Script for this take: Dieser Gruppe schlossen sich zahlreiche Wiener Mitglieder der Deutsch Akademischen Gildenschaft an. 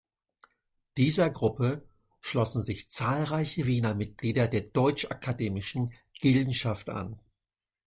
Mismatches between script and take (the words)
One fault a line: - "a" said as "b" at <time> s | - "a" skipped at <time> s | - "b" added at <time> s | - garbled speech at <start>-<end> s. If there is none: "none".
none